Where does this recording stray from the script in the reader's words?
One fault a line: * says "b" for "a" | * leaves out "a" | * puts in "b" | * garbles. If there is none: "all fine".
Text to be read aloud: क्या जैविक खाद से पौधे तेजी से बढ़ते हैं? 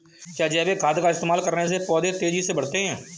* puts in "का इस्तेमाल करने"